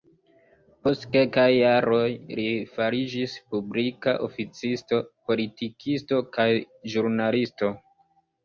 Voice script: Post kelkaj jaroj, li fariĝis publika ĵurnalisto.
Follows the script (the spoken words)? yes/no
no